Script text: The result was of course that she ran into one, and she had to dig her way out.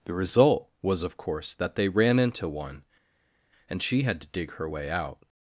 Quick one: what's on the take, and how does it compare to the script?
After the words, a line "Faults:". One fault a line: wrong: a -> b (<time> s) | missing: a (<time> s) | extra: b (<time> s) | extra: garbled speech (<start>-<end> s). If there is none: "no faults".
The result was of course that they ran into one, and she had to dig her way out.
Faults:
wrong: she -> they (1.8 s)